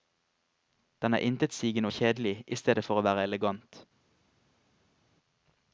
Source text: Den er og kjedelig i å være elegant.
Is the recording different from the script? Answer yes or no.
yes